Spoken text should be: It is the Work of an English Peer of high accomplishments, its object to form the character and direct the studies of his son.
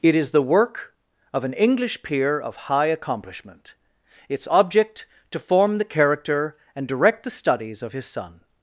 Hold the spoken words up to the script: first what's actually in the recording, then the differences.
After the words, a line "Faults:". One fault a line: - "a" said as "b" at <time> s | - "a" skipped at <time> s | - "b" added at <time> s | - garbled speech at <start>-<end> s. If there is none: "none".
It is the Work of an English Peer of high accomplishment, its object to form the character and direct the studies of his son.
Faults:
- "accomplishments" said as "accomplishment" at 2.9 s